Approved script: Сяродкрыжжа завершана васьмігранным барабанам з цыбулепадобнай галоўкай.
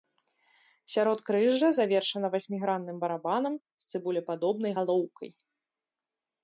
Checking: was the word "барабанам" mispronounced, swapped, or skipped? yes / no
no